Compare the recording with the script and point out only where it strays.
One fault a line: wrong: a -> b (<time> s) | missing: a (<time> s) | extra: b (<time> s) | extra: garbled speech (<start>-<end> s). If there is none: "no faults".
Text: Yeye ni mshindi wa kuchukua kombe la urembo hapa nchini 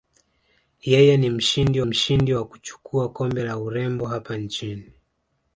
extra: mshindi (1.8 s)